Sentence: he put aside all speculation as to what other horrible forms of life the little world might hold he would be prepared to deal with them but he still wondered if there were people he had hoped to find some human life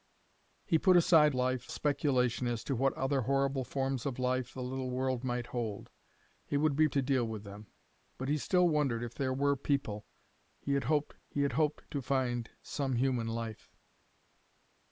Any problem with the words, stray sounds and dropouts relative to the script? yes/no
yes